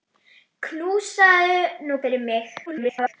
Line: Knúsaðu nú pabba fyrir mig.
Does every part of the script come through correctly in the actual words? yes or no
no